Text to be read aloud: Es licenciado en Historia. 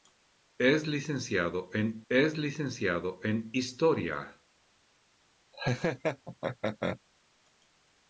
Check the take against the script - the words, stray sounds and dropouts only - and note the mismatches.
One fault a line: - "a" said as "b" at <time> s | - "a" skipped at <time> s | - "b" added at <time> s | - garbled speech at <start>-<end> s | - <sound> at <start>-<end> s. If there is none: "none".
- "es licenciado en" added at 2.1 s
- laugh at 5.5-7.0 s